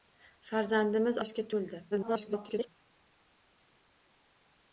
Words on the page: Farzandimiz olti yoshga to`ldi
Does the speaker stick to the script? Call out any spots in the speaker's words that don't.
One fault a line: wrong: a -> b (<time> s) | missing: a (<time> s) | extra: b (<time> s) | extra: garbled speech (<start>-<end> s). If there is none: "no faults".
missing: olti (1.2 s)
extra: garbled speech (1.9-2.7 s)